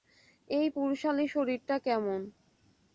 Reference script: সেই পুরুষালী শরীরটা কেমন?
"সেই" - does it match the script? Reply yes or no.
no